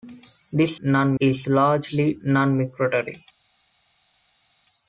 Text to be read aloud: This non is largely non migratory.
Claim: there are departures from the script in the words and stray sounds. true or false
false